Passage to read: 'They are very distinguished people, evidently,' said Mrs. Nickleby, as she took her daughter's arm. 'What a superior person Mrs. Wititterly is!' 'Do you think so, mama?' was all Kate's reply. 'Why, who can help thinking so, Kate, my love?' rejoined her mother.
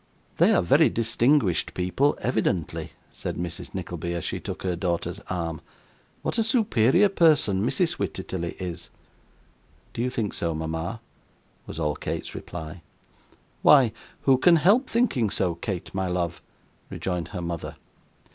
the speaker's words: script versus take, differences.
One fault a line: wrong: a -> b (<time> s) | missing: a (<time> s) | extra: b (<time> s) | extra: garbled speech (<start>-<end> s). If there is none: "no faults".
no faults